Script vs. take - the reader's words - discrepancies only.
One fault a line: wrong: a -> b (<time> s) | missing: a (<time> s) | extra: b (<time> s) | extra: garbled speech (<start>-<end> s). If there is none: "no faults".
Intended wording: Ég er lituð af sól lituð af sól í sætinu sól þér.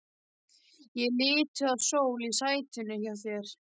missing: lituð af sól (2.2 s)
wrong: sól -> hjá (3.0 s)